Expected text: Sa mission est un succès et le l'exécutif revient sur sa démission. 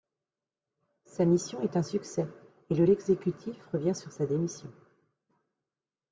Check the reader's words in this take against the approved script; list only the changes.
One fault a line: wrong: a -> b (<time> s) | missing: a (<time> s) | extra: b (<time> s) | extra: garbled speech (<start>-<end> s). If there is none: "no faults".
no faults